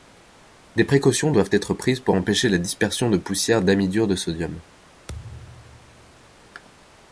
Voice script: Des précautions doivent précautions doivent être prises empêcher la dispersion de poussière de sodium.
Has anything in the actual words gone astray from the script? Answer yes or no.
yes